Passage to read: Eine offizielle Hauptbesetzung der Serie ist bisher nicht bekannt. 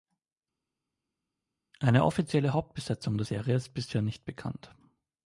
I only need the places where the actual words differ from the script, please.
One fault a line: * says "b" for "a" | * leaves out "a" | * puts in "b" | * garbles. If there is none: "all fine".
all fine